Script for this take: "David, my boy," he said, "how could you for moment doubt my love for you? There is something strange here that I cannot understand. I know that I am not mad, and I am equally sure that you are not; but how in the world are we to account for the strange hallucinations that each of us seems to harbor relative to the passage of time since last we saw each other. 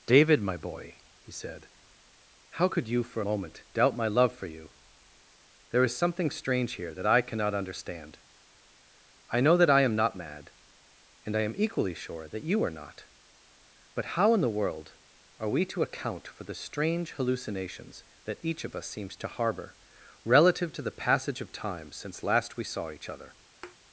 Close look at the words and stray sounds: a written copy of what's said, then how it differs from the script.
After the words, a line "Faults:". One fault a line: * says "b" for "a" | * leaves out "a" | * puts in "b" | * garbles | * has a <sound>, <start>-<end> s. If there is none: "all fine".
"David, my boy," he said, "how could you for moment doubt my love for you? There is something strange here that I cannot understand. I know that I am not mad, and I am equally sure that you are not; but how in the world are we to account for the strange hallucinations that each of us seems to harbor relative to the passage of time since last we saw each other.
Faults:
* has a thud, 23.6-23.8 s